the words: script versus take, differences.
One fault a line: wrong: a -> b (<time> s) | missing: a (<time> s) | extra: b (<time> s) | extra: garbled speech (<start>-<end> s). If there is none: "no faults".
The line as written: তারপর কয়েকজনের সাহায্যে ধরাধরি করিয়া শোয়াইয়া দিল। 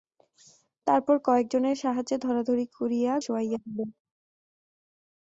no faults